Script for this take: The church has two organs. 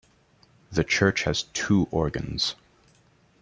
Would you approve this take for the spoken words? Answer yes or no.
yes